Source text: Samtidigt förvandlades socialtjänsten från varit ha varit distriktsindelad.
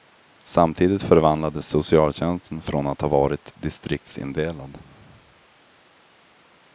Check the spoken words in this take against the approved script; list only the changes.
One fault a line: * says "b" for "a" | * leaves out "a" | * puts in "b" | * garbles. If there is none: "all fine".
* says "att" for "varit"